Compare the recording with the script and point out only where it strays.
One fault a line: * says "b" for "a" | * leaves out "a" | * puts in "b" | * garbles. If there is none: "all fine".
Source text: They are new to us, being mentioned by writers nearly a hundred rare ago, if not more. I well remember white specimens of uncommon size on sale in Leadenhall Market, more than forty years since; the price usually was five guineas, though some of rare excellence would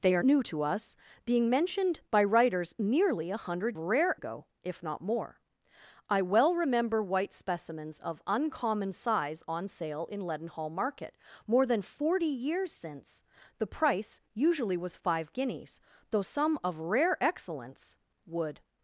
all fine